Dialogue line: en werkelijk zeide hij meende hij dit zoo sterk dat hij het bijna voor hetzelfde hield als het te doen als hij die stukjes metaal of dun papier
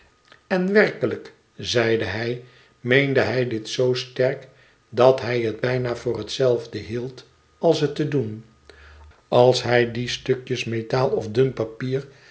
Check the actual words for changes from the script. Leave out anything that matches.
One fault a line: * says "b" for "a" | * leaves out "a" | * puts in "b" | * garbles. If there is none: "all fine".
all fine